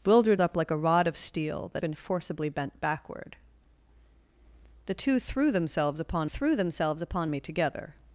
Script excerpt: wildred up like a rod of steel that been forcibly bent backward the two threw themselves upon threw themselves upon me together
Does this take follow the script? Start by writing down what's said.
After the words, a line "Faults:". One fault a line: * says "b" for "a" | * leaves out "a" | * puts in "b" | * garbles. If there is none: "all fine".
wildred up like a rod of steel that been forcibly bent backward the two threw themselves upon threw themselves upon me together
Faults:
all fine